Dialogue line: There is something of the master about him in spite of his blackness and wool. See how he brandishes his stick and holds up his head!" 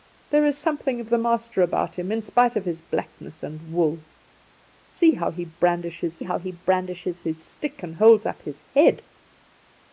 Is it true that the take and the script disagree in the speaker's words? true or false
true